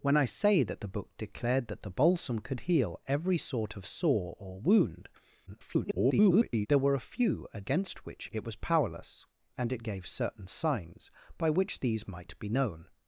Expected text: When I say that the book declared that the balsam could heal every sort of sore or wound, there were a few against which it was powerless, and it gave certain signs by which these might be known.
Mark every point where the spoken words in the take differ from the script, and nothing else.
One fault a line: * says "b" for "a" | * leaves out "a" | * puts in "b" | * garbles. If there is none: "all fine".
* garbles